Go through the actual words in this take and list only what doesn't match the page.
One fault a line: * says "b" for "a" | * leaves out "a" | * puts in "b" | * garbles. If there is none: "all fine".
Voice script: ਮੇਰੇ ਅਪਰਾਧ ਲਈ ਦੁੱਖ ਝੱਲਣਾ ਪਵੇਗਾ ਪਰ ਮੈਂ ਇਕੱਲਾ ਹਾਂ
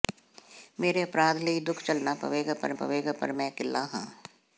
* puts in "ਪਵੇਗਾ ਪਰ"